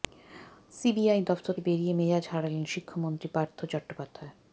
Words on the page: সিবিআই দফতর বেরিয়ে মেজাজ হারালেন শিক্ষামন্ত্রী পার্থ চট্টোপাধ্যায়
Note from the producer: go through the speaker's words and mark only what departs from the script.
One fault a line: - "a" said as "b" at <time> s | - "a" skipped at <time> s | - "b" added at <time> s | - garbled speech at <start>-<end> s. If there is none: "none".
none